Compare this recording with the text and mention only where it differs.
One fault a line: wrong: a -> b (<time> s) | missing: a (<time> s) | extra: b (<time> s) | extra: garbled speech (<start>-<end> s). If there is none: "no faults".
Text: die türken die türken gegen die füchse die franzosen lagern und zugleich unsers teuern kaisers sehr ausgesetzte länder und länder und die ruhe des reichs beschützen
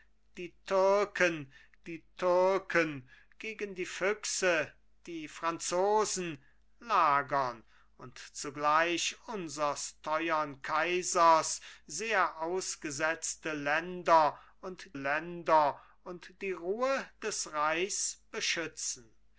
no faults